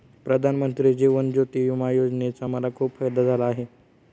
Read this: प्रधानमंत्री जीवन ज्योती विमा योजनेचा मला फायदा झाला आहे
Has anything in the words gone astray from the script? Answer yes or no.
yes